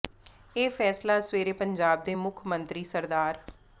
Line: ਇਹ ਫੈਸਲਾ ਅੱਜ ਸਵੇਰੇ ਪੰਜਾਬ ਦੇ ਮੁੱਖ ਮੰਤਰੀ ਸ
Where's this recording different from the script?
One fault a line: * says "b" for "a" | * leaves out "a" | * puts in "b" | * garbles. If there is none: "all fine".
all fine